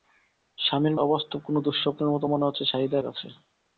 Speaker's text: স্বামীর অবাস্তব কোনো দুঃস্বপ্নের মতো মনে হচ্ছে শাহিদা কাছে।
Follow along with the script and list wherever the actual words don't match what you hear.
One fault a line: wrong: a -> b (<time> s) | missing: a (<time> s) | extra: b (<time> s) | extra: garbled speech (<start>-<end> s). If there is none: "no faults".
no faults